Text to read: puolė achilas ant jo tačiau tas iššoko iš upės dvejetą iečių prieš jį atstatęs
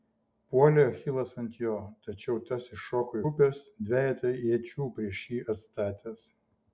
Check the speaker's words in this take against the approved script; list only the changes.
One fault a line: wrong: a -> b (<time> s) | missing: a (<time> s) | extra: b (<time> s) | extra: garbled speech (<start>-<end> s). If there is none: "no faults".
missing: iš (3.2 s)